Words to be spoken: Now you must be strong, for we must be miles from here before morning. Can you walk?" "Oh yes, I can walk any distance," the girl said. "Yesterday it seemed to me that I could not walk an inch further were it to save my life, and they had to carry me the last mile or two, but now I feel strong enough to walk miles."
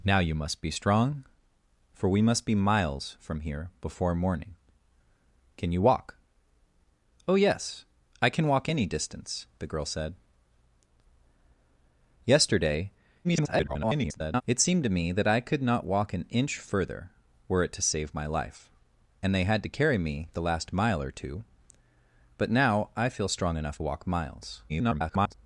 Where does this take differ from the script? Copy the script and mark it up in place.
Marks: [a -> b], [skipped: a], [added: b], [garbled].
Now you must be strong, for we must be miles from here before morning. Can you walk?" "Oh yes, I can walk any distance," the girl said. "Yesterday [garbled] it seemed to me that I could not walk an inch further were it to save my life, and they had to carry me the last mile or two, but now I feel strong enough [skipped: to] walk miles." [garbled]